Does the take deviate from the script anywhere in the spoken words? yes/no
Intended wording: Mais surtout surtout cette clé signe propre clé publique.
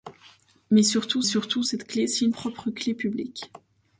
no